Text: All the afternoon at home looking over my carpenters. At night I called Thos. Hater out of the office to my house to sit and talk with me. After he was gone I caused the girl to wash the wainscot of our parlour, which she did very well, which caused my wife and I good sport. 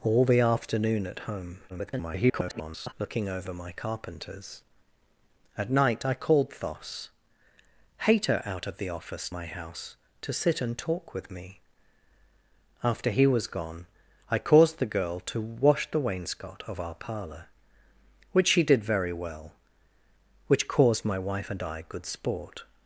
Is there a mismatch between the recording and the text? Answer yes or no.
yes